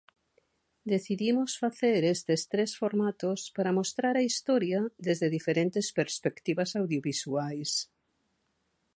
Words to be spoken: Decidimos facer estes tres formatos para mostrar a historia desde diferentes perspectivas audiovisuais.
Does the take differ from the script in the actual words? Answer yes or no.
no